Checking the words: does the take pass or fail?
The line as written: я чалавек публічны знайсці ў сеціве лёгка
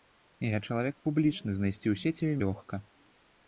pass